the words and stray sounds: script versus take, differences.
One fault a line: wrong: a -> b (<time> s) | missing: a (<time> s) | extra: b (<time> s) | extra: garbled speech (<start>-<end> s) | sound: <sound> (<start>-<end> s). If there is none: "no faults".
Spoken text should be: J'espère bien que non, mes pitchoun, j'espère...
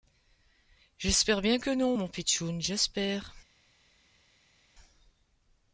wrong: mes -> mon (1.9 s)